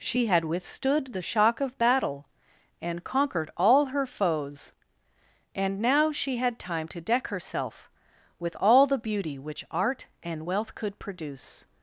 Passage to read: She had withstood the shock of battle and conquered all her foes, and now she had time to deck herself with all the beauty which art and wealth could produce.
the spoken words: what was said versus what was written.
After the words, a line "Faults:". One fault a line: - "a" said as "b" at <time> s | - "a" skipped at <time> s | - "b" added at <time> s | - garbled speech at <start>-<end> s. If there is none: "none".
She had withstood the shock of battle and conquered all her foes, and now she had time to deck herself with all the beauty which art and wealth could produce.
Faults:
none